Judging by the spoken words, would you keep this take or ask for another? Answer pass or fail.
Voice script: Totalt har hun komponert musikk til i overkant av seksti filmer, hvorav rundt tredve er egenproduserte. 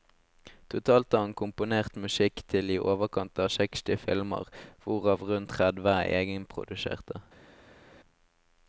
fail